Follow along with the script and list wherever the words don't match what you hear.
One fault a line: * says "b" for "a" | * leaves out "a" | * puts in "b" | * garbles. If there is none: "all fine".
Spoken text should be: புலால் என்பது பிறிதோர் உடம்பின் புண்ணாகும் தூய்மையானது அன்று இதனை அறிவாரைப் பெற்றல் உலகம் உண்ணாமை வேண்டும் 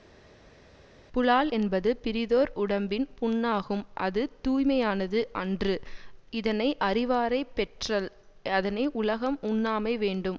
* puts in "அது"
* puts in "அதனை"